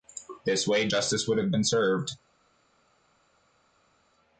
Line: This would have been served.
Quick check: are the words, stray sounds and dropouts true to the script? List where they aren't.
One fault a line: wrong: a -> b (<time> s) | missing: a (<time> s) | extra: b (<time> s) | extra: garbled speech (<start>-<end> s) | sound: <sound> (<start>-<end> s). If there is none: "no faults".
extra: way justice (0.7 s)